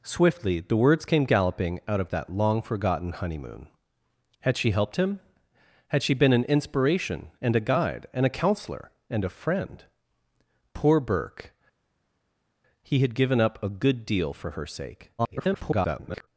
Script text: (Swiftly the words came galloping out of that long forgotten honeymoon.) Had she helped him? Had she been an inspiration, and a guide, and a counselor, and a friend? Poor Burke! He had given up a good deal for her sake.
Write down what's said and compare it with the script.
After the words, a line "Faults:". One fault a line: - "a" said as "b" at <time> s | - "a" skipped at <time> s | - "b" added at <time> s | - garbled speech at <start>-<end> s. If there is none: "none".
(Swiftly the words came galloping out of that long forgotten honeymoon.) Had she helped him? Had she been an inspiration, and a guide, and a counselor, and a friend? Poor Burke! He had given up a good deal for her sake. [garbled]
Faults:
- garbled speech at 15.2-16.3 s